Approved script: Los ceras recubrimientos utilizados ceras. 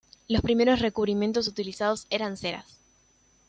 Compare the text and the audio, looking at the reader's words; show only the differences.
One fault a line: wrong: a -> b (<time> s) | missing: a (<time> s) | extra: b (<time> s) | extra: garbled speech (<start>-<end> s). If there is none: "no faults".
wrong: ceras -> primeros (0.4 s)
extra: eran (2.1 s)